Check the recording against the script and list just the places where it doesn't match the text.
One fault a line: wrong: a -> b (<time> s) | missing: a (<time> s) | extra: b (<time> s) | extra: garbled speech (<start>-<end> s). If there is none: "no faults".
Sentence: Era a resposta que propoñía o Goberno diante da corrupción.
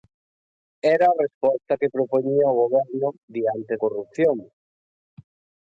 missing: da (3.7 s)